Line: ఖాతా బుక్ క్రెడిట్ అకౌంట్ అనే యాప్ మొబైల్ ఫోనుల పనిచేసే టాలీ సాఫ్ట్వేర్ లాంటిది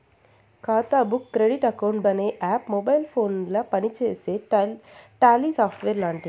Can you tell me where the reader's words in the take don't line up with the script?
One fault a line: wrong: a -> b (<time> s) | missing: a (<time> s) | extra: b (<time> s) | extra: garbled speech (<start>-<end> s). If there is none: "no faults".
no faults